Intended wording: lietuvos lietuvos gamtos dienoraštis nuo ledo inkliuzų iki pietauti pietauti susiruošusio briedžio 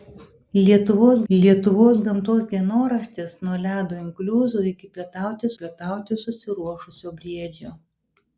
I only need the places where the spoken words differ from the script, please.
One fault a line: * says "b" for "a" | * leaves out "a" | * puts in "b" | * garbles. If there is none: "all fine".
all fine